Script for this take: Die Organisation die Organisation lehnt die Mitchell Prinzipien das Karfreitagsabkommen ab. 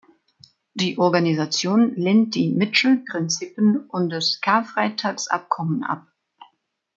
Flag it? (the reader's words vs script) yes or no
yes